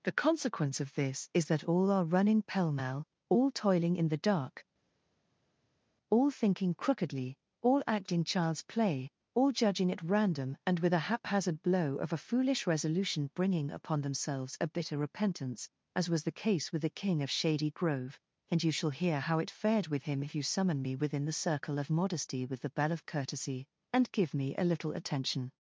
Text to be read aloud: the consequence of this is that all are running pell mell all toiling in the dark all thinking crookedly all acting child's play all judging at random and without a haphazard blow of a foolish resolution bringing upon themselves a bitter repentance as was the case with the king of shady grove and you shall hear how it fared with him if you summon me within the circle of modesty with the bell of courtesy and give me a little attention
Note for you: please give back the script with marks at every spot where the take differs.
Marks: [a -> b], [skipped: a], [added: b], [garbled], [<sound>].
the consequence of this is that all are running pell mell all toiling in the dark all thinking crookedly all acting child's play all judging at random and [without -> with] a haphazard blow of a foolish resolution bringing upon themselves a bitter repentance as was the case with the king of shady grove and you shall hear how it fared with him if you summon me within the circle of modesty with the bell of courtesy and give me a little attention